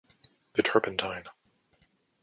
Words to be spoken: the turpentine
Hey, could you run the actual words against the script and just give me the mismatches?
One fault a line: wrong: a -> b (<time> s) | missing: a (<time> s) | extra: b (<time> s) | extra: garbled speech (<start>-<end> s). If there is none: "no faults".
no faults